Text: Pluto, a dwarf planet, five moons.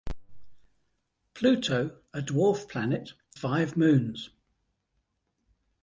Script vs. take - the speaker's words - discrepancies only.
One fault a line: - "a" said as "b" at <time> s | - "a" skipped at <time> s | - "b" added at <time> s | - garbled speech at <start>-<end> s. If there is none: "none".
none